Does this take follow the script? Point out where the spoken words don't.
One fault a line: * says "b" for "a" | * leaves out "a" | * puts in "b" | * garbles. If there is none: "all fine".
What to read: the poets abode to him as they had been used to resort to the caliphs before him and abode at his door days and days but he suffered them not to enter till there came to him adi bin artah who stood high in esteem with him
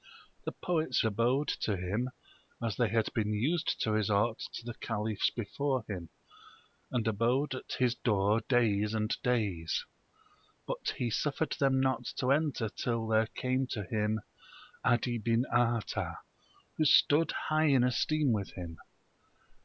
all fine